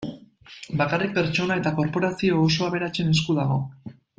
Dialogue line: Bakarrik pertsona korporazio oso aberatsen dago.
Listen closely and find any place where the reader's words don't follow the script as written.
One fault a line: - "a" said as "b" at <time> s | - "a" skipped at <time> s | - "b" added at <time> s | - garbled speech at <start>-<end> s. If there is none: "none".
- "eta" added at 1.6 s
- "esku" added at 3.2 s